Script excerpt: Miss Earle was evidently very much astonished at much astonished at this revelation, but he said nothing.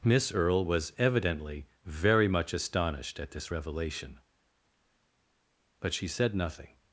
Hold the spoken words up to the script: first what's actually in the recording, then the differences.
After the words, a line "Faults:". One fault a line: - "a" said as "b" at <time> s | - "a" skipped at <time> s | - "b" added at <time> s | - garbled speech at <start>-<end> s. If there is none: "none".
Miss Earle was evidently very much astonished at this revelation, but she said nothing.
Faults:
- "much astonished at" skipped at 3.3 s
- "he" said as "she" at 5.9 s